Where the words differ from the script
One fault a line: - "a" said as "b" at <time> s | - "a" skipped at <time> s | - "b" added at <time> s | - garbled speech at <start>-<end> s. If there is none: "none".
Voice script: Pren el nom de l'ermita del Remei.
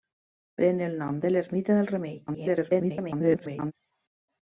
- garbled speech at 2.3-3.7 s